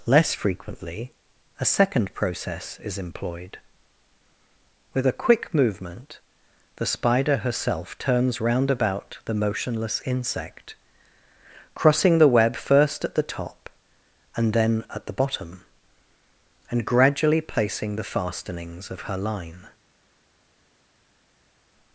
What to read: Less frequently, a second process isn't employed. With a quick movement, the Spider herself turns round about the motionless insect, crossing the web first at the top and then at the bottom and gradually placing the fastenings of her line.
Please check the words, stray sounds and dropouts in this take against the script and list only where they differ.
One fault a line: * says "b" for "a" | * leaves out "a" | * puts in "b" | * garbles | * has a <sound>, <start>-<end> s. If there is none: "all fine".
* says "is" for "isn't"